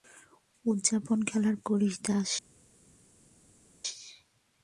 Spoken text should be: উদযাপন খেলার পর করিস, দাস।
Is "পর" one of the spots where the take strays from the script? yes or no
yes